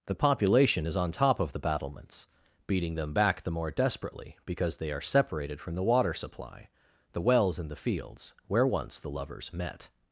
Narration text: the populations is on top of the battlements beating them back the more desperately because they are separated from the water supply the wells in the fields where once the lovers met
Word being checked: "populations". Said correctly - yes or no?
no